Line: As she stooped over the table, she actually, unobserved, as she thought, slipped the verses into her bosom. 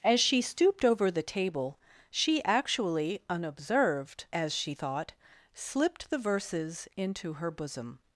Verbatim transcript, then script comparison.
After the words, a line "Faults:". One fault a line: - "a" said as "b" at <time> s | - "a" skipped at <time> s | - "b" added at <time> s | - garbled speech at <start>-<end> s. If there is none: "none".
As she stooped over the table, she actually, unobserved, as she thought, slipped the verses into her bosom.
Faults:
none